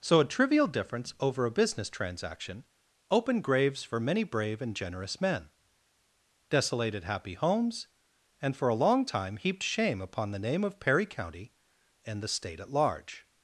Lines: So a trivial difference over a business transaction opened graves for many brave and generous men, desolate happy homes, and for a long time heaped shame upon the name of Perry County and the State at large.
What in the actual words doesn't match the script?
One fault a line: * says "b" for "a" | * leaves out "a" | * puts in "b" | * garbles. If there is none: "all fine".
* says "desolated" for "desolate"